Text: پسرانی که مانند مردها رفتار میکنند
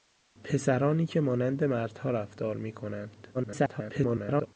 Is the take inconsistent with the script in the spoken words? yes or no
yes